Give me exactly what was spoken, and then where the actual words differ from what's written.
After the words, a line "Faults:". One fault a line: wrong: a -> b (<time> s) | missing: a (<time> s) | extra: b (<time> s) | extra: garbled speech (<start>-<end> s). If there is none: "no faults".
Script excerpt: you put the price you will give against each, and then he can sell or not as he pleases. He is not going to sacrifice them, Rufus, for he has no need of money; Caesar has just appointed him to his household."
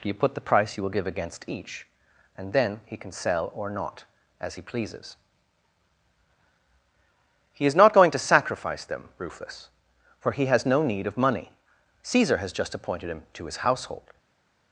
you put the price you will give against each, and then he can sell or not as he pleases. He is not going to sacrifice them, Rufus, for he has no need of money; Caesar has just appointed him to his household."
Faults:
no faults